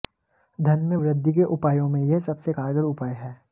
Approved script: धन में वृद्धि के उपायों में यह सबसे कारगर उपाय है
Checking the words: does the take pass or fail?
pass